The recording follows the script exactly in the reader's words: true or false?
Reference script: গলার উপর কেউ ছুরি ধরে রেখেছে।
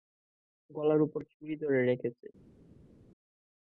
false